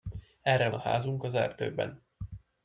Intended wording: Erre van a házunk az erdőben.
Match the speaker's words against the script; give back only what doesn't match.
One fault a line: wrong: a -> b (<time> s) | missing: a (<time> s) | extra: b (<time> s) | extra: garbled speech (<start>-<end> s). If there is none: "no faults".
missing: van (0.7 s)